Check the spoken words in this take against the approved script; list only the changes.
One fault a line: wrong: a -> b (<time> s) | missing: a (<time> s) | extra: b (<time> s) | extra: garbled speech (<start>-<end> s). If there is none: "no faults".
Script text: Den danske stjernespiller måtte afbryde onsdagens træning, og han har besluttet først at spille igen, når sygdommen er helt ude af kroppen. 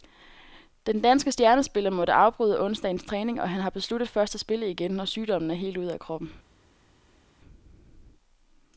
no faults